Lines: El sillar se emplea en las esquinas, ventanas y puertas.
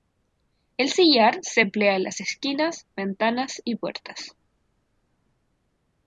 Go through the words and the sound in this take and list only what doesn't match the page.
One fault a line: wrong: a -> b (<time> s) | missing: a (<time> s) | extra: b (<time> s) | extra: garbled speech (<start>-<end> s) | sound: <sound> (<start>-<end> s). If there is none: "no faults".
no faults